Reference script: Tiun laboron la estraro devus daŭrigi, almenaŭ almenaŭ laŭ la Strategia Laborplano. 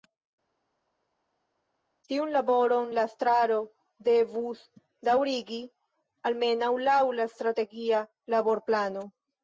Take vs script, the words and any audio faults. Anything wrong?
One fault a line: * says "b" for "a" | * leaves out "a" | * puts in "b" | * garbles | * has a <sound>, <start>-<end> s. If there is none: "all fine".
* leaves out "almenaŭ"